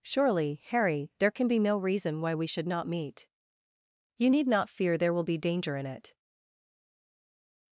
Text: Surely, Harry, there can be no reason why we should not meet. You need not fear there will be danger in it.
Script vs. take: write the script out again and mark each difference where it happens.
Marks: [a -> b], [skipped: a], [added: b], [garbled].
Surely, Harry, there can be no reason why we should not meet. You need not fear there will be danger in it.